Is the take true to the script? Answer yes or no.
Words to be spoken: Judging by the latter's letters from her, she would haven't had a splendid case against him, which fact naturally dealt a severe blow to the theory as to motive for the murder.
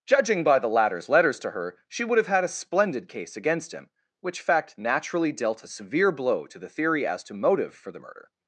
no